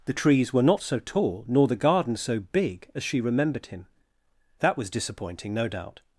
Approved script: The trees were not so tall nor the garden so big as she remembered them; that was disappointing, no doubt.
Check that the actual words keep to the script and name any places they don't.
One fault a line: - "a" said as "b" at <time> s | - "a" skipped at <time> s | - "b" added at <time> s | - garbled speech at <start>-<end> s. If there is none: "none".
- "them" said as "him" at 3.7 s